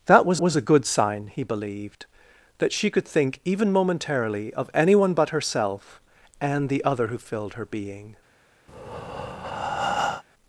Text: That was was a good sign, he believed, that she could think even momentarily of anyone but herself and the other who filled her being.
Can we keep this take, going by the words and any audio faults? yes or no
no